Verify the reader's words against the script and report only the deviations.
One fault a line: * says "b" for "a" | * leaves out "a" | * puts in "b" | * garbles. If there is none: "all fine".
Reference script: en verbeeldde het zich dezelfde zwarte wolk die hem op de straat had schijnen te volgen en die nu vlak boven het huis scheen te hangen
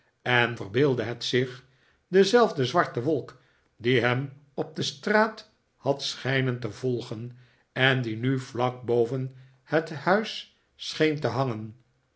all fine